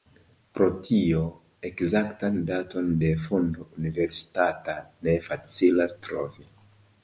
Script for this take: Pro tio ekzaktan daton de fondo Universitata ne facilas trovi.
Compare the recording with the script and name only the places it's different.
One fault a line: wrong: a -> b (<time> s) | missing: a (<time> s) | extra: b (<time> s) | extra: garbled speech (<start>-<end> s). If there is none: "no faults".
no faults